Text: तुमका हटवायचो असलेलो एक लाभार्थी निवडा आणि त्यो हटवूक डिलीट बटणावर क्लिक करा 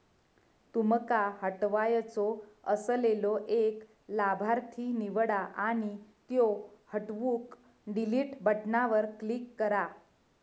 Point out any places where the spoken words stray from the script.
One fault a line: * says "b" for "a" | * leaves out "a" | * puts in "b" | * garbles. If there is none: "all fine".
all fine